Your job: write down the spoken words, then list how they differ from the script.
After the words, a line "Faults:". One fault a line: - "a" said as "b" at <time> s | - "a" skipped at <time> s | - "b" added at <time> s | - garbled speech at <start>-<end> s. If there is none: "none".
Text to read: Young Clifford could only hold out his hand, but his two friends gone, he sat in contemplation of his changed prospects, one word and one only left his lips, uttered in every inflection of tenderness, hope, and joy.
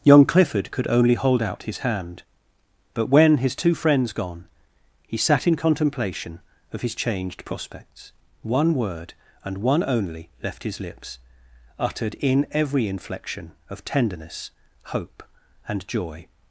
Young Clifford could only hold out his hand, but when, his two friends gone, he sat in contemplation of his changed prospects, one word and one only left his lips, uttered in every inflection of tenderness, hope, and joy.
Faults:
- "when" added at 3.1 s